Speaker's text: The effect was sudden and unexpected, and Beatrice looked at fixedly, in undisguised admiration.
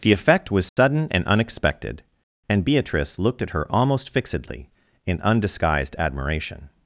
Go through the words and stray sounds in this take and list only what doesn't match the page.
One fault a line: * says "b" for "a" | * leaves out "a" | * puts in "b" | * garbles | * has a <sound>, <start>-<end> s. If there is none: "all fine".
* has a dropout, 0.7-0.8 s
* puts in "her almost"